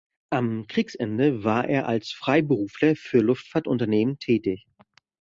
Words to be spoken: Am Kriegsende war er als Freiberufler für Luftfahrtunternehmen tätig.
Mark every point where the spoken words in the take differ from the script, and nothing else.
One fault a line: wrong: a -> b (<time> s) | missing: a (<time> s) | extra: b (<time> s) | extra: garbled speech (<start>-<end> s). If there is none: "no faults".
no faults